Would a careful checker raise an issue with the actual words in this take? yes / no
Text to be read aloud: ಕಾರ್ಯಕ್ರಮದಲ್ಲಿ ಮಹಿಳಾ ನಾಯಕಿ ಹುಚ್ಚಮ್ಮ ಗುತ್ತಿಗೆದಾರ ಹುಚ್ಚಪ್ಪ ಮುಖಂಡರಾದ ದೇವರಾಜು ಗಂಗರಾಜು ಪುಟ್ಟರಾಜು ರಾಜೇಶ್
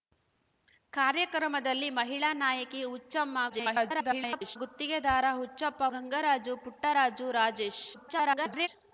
yes